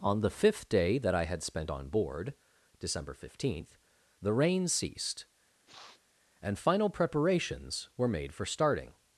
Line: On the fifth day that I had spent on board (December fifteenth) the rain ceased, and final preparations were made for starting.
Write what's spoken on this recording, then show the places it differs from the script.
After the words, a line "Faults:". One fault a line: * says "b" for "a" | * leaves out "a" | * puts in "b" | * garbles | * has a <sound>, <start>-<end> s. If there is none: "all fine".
On the fifth day that I had spent on board (December fifteenth) the rain ceased, and final preparations were made for starting.
Faults:
* has a sniff, 5.7-6.0 s